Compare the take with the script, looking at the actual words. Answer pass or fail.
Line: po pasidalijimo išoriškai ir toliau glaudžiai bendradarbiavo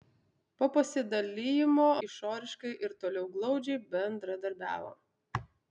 pass